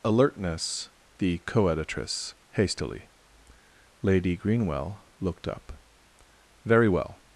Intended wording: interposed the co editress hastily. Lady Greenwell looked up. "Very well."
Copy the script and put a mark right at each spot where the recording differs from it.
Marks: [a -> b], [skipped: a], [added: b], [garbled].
[interposed -> alertness] the co editress hastily. Lady Greenwell looked up. "Very well."